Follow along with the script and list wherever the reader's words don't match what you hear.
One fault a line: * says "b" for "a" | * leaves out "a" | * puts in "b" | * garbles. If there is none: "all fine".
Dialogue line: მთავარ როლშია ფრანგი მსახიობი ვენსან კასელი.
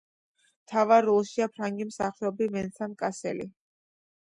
all fine